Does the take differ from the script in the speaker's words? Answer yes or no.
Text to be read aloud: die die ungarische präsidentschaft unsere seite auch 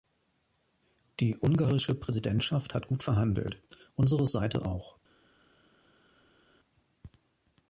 yes